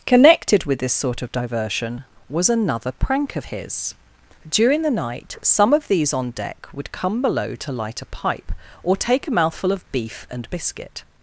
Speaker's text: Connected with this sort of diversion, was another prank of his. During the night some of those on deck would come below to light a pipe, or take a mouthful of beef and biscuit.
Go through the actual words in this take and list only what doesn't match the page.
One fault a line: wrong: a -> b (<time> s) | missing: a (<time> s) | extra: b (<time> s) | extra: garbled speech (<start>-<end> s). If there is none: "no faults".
wrong: those -> these (5.9 s)